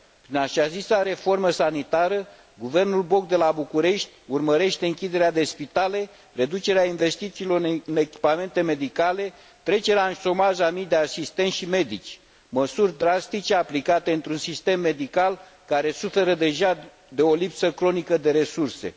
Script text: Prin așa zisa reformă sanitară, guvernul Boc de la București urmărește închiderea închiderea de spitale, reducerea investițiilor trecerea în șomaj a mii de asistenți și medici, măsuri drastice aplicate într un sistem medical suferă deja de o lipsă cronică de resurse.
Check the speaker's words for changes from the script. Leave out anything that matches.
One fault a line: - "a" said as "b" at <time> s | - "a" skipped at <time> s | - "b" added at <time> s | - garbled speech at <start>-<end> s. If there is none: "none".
- "închiderea" skipped at 5.3 s
- "în echipamente medicale" added at 7.8 s
- "care" added at 15.7 s